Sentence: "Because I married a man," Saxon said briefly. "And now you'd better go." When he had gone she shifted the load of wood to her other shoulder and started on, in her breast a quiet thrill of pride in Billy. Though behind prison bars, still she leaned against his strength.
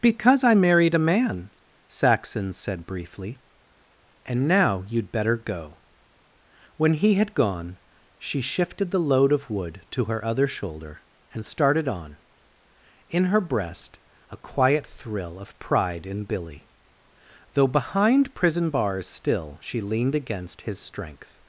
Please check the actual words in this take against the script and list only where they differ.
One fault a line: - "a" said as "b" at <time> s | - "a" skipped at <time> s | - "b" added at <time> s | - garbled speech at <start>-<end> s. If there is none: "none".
none